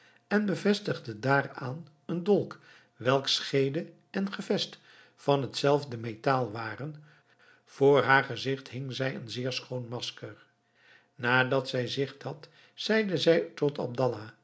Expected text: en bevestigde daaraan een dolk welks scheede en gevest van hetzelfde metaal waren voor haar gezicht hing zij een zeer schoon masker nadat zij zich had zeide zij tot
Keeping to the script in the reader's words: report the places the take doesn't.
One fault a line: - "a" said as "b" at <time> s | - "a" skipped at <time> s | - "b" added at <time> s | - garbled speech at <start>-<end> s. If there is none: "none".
none